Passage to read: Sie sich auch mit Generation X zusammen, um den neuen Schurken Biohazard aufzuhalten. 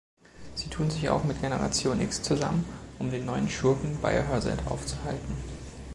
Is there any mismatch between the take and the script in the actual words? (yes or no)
yes